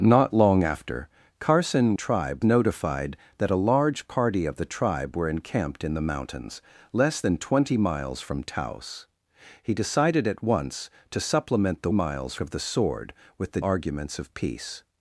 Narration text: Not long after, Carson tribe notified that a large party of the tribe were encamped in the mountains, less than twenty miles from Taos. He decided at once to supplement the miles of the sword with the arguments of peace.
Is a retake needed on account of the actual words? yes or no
no